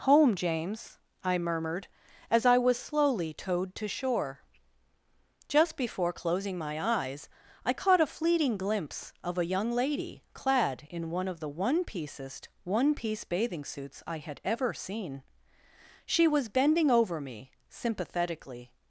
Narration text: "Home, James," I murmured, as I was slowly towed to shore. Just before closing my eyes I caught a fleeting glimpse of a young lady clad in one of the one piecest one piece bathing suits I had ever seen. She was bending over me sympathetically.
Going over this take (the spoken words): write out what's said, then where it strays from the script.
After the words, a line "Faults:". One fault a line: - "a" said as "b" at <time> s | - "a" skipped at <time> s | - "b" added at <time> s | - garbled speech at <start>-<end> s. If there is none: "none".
"Home, James," I murmured, as I was slowly towed to shore. Just before closing my eyes I caught a fleeting glimpse of a young lady clad in one of the one piecest one piece bathing suits I had ever seen. She was bending over me sympathetically.
Faults:
none